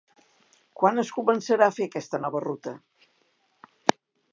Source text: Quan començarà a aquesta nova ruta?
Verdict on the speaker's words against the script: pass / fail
fail